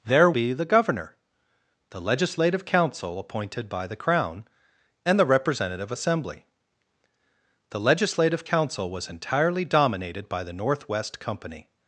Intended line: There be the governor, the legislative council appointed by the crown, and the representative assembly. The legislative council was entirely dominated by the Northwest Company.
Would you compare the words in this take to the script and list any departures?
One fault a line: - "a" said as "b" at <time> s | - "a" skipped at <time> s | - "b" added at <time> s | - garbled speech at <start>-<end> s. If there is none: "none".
none